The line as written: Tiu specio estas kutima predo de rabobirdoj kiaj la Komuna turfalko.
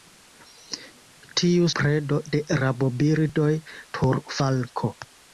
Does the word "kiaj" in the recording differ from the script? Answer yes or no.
yes